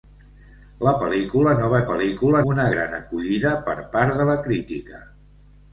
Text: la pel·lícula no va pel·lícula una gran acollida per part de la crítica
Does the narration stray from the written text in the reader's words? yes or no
no